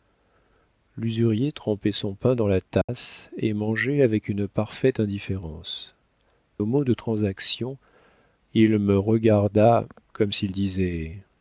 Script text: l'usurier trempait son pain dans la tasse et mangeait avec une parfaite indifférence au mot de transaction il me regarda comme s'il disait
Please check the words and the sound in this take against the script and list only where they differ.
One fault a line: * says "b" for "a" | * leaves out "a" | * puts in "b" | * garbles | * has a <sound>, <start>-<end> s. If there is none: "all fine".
* has a dropout, 2.8-2.9 s